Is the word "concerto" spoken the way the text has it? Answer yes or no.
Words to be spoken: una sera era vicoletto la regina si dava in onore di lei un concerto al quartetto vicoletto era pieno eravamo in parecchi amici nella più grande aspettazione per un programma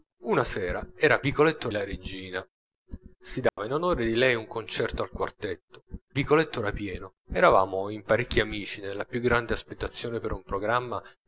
yes